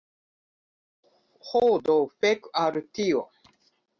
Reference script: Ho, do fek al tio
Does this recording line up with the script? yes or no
yes